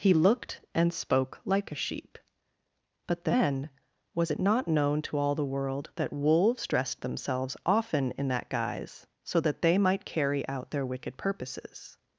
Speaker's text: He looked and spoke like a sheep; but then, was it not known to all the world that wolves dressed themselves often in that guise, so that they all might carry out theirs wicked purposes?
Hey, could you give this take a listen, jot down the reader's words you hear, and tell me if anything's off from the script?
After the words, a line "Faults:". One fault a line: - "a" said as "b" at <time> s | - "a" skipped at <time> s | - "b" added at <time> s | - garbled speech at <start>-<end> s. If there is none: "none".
He looked and spoke like a sheep; but then, was it not known to all the world that wolves dressed themselves often in that guise, so that they might carry out their wicked purposes?
Faults:
- "all" skipped at 9.8 s
- "theirs" said as "their" at 10.7 s